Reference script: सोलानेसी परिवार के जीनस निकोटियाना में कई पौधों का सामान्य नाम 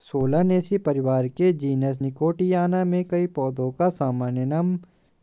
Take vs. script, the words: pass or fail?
pass